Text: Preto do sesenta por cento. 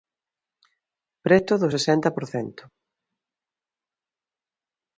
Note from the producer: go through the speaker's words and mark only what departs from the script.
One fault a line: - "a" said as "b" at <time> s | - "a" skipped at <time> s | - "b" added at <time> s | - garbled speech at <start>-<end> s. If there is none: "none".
none